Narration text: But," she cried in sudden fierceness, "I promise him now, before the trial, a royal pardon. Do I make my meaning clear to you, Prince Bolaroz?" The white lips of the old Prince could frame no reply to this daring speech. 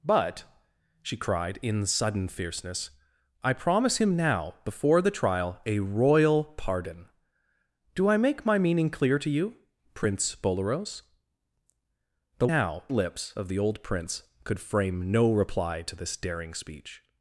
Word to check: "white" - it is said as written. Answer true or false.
false